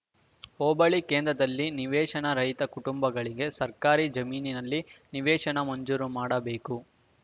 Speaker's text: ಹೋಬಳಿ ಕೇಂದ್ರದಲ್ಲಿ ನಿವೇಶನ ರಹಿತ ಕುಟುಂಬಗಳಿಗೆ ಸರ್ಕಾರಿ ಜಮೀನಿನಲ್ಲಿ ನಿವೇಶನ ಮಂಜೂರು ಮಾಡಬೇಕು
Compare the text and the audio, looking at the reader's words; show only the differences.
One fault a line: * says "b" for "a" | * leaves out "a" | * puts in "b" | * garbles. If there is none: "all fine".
all fine